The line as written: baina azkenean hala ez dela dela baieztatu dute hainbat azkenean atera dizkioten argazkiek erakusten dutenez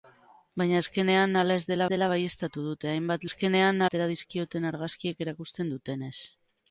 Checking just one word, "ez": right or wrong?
right